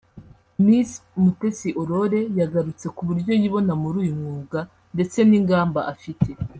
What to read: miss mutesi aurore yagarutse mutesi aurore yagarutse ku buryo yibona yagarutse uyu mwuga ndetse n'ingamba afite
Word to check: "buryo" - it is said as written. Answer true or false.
true